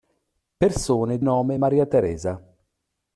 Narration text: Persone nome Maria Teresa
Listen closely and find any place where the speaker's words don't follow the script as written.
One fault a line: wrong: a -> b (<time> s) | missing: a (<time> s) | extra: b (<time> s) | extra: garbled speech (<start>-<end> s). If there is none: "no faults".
no faults